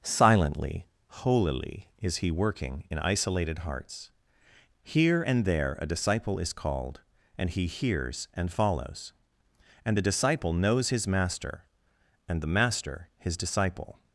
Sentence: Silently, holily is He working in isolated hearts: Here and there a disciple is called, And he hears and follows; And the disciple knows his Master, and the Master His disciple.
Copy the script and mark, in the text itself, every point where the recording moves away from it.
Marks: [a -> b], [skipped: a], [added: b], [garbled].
Silently, holily is He working in isolated hearts: Here and there a disciple is called, And he hears and follows; And the disciple knows his Master, and the Master His disciple.